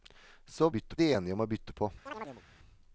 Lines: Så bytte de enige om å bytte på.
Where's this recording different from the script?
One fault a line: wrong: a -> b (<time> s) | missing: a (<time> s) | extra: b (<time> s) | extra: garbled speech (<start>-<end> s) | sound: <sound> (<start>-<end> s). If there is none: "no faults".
sound: chirp (2.1-2.4 s)